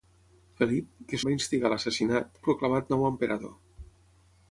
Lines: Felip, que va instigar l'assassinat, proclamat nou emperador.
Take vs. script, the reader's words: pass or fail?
pass